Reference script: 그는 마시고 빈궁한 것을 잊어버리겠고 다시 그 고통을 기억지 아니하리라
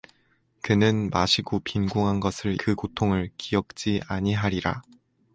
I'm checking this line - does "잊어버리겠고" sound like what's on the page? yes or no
no